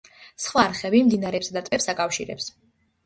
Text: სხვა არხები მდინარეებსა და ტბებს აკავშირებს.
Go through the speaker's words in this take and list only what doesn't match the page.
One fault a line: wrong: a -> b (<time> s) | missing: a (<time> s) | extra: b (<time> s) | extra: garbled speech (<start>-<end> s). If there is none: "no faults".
no faults